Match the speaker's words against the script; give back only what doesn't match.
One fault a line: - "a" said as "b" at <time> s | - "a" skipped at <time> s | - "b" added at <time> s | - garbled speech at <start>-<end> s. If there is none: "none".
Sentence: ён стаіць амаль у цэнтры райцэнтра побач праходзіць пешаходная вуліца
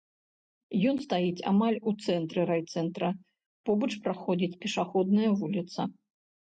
none